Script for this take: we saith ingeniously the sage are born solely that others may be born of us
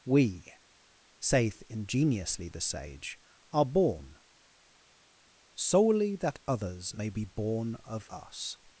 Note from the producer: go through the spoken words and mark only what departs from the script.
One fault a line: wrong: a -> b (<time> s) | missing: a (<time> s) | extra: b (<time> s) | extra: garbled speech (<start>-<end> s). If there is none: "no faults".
no faults